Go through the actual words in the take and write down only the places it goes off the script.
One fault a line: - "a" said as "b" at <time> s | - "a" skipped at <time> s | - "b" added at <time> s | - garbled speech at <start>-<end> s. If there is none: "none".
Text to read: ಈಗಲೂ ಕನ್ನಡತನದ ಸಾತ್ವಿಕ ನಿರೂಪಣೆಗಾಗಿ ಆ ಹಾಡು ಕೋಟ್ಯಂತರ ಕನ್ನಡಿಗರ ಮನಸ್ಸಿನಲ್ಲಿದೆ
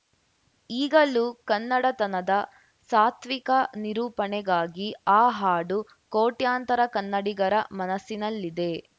none